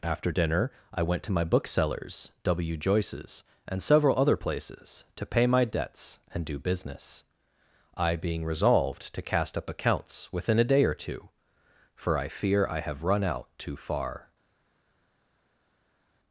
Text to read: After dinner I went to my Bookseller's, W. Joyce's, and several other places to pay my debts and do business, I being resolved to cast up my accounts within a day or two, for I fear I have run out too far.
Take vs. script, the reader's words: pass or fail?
fail